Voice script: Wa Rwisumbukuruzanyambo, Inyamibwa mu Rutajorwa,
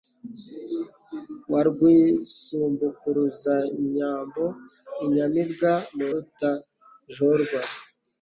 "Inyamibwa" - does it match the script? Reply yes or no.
yes